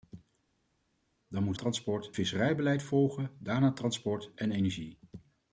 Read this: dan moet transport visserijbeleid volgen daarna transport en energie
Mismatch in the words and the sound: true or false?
false